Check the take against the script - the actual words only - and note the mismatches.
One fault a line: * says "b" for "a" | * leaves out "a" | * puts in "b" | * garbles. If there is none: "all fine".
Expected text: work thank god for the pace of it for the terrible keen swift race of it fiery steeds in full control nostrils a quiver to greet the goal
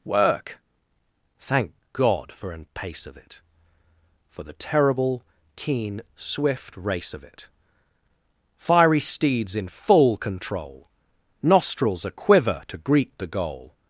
* says "an" for "the"